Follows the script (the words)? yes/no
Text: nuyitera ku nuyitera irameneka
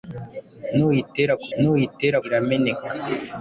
yes